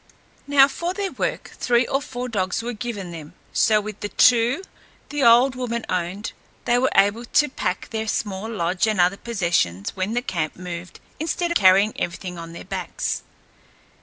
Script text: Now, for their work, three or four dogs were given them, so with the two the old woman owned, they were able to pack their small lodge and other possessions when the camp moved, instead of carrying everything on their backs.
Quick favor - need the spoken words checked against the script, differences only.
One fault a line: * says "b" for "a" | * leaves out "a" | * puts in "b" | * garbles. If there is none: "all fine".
* leaves out "of"